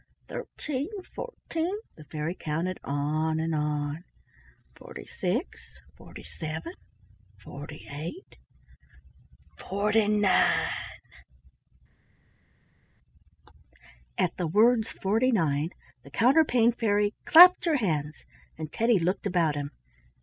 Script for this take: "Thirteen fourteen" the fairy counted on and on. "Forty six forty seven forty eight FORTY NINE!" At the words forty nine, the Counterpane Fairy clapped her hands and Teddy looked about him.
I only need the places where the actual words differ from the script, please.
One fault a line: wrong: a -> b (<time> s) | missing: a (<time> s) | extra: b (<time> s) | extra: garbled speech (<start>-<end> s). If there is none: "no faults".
no faults